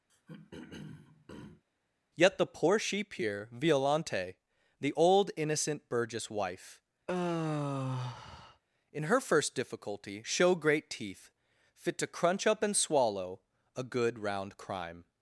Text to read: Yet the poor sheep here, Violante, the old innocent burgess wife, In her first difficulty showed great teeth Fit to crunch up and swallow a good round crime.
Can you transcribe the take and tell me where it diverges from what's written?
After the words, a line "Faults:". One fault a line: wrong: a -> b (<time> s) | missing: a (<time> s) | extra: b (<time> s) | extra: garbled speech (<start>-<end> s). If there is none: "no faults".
Yet the poor sheep here, Violante, the old innocent burgess wife, In her first difficulty show great teeth Fit to crunch up and swallow a good round crime.
Faults:
wrong: showed -> show (10.2 s)